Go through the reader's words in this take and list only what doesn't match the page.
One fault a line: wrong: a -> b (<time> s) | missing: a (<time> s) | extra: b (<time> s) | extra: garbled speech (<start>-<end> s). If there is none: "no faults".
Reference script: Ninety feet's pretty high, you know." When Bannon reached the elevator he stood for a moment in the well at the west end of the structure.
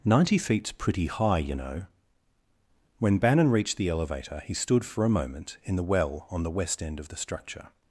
wrong: at -> on (6.3 s)